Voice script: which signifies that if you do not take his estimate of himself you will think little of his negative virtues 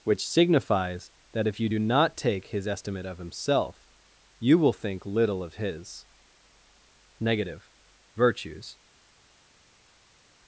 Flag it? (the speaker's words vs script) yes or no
no